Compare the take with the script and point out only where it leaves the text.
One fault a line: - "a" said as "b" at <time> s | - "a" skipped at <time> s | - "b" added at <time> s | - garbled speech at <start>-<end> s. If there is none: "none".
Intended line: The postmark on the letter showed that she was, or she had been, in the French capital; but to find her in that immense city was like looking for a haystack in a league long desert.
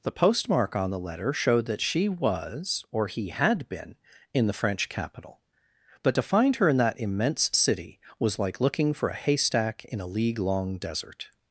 - "she" said as "he" at 3.1 s